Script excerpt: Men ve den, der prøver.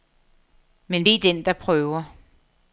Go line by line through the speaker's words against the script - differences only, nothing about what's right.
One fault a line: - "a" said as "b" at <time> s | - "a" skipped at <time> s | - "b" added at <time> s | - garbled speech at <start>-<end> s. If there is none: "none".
none